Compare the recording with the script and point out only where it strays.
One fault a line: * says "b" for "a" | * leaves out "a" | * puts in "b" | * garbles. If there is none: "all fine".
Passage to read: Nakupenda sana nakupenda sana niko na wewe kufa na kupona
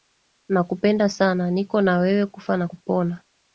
* leaves out "nakupenda sana"